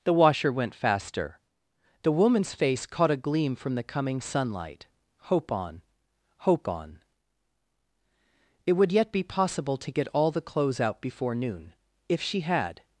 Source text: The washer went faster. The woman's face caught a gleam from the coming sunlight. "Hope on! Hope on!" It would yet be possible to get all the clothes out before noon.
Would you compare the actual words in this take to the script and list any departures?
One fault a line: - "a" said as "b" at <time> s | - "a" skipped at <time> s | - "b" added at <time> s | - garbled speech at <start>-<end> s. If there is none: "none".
- "If she had" added at 12.1 s